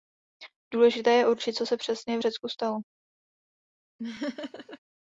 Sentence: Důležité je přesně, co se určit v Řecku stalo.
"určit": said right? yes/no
no